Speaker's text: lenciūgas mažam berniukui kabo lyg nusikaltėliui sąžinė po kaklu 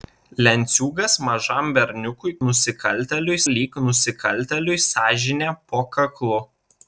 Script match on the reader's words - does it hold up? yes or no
no